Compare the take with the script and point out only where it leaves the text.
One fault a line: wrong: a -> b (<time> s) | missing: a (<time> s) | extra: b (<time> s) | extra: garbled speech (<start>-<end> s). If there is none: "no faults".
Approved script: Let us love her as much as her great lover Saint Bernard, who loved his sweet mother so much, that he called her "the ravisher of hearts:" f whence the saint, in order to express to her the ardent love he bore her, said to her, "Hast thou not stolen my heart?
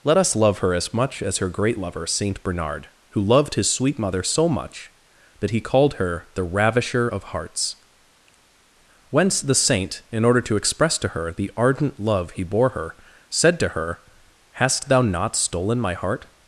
missing: f (7.8 s)